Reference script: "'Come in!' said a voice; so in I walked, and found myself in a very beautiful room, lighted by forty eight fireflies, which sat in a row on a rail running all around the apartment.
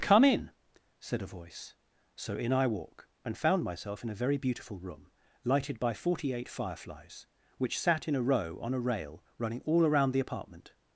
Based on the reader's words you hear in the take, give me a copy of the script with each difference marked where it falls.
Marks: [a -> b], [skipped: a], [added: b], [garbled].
"'Come in!' said a voice; so in I [walked, -> walk] and found myself in a very beautiful room, lighted by forty eight fireflies, which sat in a row on a rail running all around the apartment.